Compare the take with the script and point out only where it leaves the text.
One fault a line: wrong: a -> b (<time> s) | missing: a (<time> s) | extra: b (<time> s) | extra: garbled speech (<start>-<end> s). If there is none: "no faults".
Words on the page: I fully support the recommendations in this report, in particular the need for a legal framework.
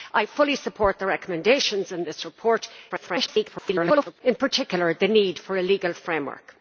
extra: garbled speech (2.9-4.2 s)